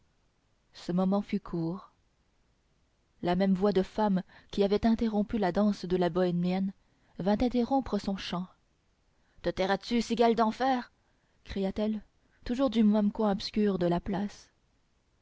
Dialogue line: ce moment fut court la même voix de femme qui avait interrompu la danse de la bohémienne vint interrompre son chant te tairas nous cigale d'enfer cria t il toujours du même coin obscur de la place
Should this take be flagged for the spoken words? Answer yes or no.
yes